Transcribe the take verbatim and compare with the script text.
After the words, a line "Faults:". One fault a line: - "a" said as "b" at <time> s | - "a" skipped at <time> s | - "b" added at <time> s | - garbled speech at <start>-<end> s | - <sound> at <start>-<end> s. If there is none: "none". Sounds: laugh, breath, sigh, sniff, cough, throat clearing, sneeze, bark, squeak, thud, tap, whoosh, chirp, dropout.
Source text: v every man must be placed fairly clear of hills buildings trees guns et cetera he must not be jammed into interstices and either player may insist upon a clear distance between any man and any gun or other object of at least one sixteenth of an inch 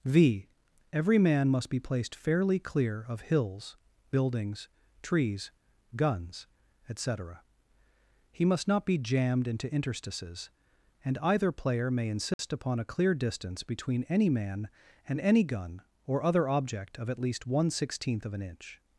v every man must be placed fairly clear of hills buildings trees guns et cetera he must not be jammed into interstices and either player may insist upon a clear distance between any man and any gun or other object of at least one sixteenth of an inch
Faults:
- dropout at 12.3-12.4 s